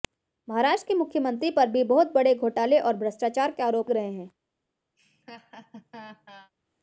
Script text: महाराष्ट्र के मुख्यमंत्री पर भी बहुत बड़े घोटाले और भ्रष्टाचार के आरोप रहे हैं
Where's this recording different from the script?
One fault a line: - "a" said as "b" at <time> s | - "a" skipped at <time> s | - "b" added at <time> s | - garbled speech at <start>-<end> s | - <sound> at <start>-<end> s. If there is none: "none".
- laugh at 5.0-6.5 s